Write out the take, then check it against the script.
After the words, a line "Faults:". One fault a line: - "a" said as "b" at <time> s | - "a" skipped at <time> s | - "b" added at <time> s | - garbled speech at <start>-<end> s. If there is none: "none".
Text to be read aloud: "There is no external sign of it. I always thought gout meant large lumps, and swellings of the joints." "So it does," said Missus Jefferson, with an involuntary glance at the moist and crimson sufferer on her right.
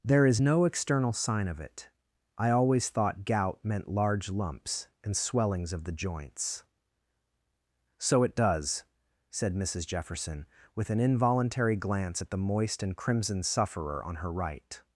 "There is no external sign of it. I always thought gout meant large lumps, and swellings of the joints." "So it does," said Missus Jefferson, with an involuntary glance at the moist and crimson sufferer on her right.
Faults:
none